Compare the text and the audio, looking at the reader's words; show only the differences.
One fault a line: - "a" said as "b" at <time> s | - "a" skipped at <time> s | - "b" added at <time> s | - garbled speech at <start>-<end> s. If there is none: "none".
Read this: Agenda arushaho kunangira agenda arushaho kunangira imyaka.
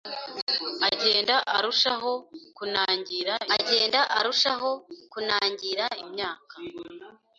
none